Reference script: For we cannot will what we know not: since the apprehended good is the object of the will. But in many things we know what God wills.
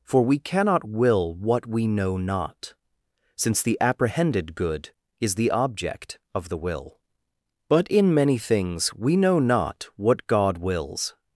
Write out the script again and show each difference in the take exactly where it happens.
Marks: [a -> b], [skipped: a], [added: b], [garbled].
For we cannot will what we know not: since the apprehended good is the object of the will. But in many things we know [added: not] what God wills.